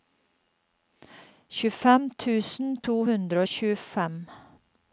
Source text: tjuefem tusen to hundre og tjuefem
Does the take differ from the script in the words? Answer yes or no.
no